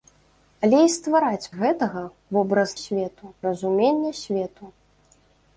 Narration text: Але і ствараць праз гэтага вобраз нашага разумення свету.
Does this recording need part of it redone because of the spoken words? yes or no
yes